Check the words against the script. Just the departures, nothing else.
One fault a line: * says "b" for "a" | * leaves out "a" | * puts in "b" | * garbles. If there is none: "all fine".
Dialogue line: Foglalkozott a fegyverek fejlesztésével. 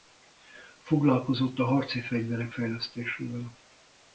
* puts in "harci"